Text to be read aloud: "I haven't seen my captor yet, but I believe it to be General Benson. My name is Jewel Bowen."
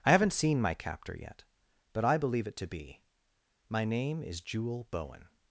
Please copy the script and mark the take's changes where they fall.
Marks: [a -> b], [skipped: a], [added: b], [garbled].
"I haven't seen my captor yet, but I believe it to be [skipped: General Benson.] My name is Jewel Bowen."